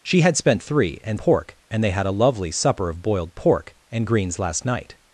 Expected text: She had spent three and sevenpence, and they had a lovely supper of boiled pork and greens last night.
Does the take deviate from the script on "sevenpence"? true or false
true